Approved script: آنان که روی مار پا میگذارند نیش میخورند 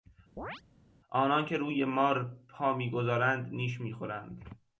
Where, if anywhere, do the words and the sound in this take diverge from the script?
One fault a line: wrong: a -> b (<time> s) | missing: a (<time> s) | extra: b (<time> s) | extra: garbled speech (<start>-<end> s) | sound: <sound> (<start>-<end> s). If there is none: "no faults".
sound: chirp (0.4-0.6 s)